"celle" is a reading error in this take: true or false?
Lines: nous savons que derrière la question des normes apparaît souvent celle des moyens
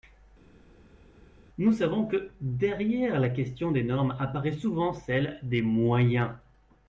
false